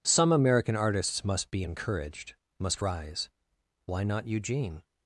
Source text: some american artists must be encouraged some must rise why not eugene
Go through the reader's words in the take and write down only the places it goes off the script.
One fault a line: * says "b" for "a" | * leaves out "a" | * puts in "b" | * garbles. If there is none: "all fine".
* leaves out "some"